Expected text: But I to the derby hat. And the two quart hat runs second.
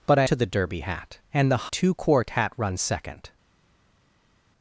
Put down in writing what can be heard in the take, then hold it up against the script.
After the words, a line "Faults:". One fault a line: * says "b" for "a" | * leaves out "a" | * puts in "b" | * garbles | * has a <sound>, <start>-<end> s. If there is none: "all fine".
But I to the derby hat. And the two quart hat runs second.
Faults:
all fine